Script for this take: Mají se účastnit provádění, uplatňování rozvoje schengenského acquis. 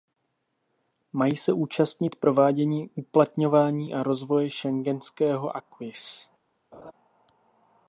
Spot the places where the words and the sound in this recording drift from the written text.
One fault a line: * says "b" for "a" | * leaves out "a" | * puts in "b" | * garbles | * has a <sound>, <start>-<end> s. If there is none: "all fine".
* puts in "a"
* has a laugh, 6.7-6.9 s